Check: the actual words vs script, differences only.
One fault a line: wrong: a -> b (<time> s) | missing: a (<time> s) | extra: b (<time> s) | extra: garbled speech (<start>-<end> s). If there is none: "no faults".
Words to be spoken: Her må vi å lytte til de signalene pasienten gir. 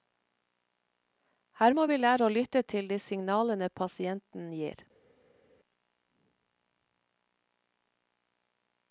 extra: lære (2.0 s)